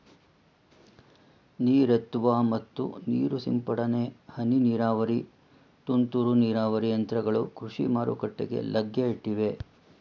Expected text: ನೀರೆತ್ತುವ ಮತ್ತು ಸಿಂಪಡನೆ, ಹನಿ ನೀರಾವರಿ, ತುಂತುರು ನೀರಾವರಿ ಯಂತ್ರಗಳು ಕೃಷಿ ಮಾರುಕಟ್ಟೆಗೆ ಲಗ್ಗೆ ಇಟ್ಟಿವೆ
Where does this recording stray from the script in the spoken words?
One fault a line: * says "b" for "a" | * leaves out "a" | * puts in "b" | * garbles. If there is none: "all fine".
* puts in "ನೀರು"